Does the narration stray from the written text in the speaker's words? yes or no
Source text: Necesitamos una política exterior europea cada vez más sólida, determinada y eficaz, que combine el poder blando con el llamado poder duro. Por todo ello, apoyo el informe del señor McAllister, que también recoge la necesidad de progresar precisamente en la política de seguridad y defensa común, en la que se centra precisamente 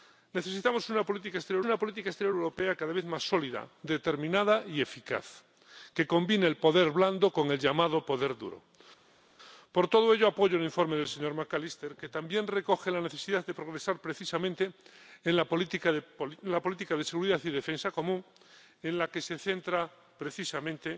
yes